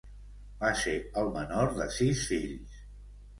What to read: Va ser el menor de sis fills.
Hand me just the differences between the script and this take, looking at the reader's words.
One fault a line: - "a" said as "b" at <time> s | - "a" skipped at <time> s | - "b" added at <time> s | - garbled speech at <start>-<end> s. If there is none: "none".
none